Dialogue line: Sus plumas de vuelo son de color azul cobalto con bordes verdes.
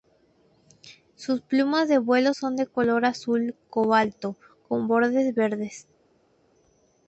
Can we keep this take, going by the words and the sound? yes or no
yes